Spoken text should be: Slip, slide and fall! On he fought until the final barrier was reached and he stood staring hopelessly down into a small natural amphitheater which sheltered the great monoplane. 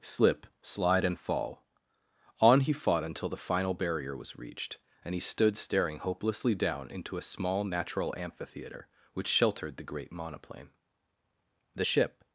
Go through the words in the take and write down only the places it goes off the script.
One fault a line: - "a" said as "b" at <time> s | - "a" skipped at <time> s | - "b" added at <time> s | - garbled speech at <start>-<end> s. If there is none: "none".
- "The ship" added at 11.7 s